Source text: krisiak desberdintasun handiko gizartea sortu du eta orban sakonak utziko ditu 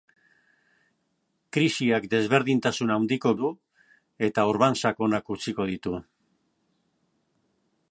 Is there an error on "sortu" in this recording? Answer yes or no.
yes